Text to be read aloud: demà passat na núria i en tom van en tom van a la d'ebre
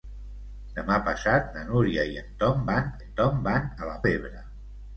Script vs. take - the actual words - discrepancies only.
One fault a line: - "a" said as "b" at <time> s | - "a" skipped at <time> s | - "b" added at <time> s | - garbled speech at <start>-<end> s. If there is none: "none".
none